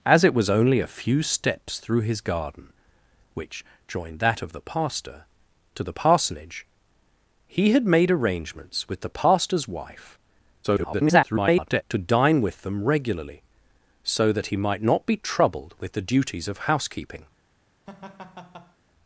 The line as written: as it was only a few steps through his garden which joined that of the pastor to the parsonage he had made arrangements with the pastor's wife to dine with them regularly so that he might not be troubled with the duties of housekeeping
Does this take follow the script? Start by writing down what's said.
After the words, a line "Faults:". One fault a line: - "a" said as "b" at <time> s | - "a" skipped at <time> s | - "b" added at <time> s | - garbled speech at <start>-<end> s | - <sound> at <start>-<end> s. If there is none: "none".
as it was only a few steps through his garden which joined that of the pastor to the parsonage he had made arrangements with the pastor's wife [garbled] to dine with them regularly so that he might not be troubled with the duties of housekeeping
Faults:
- garbled speech at 10.6-11.8 s
- laugh at 17.9-18.8 s